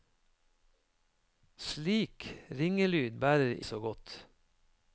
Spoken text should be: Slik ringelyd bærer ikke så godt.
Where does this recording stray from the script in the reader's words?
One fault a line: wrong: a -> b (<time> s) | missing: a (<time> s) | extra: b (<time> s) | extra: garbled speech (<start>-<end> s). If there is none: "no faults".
missing: ikke (3.5 s)